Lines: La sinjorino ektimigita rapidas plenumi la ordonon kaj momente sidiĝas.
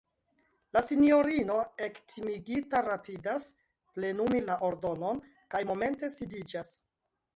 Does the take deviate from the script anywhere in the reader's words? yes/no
no